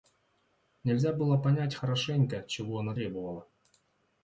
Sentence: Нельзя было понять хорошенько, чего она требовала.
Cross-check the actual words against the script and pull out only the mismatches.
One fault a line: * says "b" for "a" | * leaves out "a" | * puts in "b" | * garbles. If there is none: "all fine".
all fine